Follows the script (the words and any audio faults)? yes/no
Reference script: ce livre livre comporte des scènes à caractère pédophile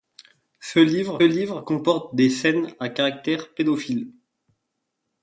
yes